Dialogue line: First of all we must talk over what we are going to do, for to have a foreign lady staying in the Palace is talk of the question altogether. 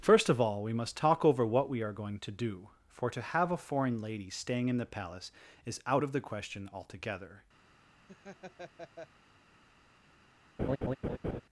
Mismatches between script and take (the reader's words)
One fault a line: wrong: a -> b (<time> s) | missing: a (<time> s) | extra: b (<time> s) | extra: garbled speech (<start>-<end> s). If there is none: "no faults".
wrong: talk -> out (5.8 s)